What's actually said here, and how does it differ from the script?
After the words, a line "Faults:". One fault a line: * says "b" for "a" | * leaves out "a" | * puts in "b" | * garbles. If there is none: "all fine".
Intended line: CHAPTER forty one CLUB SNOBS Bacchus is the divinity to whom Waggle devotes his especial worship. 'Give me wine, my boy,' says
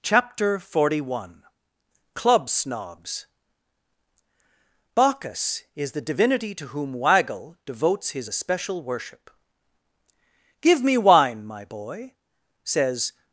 CHAPTER forty one CLUB SNOBS Bacchus is the divinity to whom Waggle devotes his especial worship. 'Give me wine, my boy,' says
Faults:
all fine